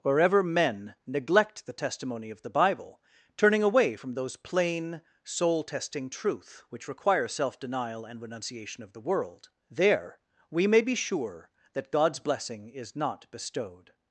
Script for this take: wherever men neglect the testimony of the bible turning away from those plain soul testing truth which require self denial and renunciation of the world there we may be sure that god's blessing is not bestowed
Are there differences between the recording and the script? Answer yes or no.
no